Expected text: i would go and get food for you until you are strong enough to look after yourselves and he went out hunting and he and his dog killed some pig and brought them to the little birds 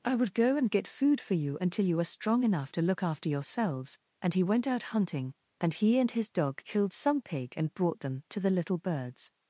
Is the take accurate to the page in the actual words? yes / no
yes